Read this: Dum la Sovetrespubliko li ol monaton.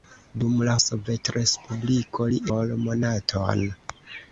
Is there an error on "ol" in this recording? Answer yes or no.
no